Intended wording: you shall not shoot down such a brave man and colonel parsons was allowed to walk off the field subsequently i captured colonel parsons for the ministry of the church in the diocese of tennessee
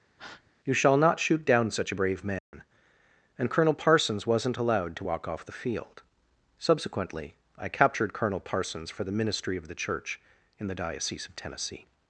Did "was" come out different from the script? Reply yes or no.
yes